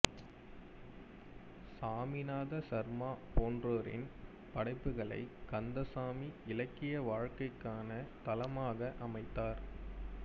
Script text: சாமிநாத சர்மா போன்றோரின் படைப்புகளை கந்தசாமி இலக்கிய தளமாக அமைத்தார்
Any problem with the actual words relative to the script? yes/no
yes